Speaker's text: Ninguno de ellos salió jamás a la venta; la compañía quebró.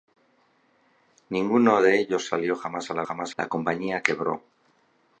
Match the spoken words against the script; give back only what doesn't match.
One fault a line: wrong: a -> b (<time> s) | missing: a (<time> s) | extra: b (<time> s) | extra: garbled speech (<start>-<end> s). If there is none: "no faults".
wrong: venta -> jamás (3.0 s)